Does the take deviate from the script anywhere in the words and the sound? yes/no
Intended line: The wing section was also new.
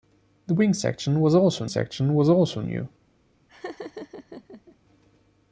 yes